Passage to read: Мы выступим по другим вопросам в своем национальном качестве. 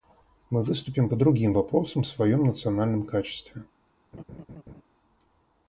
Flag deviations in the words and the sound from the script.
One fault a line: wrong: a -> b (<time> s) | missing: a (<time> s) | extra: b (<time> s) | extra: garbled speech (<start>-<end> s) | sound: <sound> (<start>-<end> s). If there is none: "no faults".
sound: laugh (4.1-4.8 s)